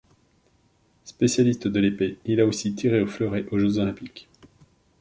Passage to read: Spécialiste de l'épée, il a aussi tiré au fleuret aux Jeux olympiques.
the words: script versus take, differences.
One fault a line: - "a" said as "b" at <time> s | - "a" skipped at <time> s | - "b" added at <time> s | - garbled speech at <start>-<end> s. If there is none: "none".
none